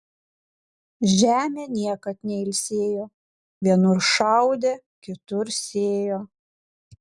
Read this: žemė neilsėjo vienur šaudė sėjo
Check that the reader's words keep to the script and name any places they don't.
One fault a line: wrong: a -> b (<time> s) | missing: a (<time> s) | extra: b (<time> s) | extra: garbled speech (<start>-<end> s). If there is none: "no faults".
extra: niekad (1.7 s)
extra: kitur (5.1 s)